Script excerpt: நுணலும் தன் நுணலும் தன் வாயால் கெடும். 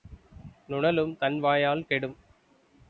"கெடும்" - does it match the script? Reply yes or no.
yes